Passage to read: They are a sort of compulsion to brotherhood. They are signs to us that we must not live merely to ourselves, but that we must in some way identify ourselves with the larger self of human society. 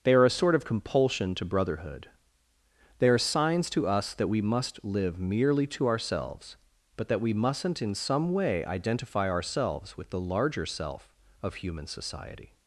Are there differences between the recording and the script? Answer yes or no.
yes